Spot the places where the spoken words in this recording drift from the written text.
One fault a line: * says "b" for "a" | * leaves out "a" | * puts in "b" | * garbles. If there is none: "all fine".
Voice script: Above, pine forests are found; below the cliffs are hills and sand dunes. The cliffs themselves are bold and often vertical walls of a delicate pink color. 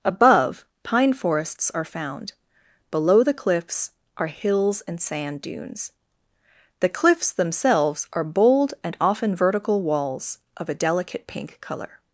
all fine